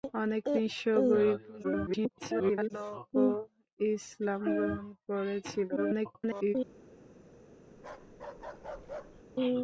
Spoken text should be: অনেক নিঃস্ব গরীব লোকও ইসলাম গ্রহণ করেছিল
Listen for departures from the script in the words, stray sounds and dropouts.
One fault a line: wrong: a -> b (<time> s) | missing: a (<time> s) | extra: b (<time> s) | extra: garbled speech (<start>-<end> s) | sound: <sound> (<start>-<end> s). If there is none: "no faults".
extra: garbled speech (1.6-2.7 s)
extra: garbled speech (5.8-6.6 s)
sound: bark (7.8-9.2 s)